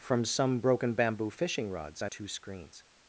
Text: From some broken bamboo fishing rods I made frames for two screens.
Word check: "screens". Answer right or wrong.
right